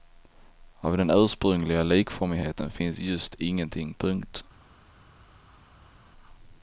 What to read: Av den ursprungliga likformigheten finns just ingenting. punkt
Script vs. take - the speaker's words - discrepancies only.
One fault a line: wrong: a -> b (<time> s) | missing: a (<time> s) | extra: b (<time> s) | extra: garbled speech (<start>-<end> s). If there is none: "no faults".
no faults